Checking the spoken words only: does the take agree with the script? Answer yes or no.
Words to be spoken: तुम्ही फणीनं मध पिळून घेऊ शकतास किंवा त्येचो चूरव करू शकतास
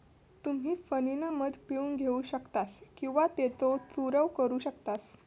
yes